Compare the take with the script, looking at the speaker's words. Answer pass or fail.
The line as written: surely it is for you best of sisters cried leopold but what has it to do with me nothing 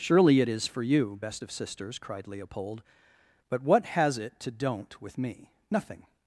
fail